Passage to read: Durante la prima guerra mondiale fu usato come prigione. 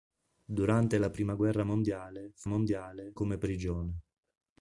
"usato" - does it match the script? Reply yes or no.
no